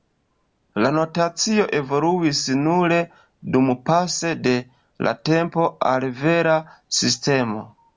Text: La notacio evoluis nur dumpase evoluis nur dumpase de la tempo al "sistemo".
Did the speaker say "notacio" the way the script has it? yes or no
yes